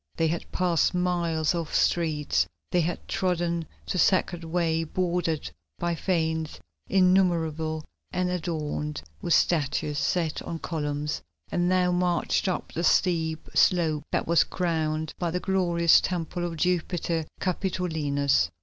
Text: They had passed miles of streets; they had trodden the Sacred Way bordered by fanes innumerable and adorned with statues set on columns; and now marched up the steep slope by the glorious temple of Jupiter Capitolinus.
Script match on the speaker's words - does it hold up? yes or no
no